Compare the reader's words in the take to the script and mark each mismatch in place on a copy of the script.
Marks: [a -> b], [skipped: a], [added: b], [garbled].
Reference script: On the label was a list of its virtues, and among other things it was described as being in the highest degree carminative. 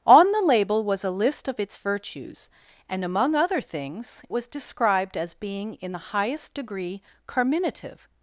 On the label was a list of its virtues, and among other things [skipped: it] was described as being in the highest degree carminative.